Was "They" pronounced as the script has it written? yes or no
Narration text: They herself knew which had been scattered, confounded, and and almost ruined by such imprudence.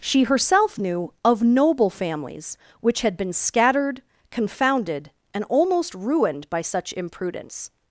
no